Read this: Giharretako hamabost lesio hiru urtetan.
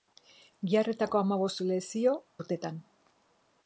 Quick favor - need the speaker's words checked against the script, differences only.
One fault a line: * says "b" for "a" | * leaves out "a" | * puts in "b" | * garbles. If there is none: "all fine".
* leaves out "hiru"